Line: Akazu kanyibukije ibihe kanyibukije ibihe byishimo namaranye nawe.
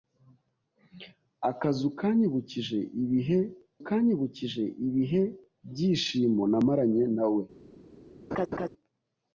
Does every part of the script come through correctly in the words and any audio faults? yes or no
no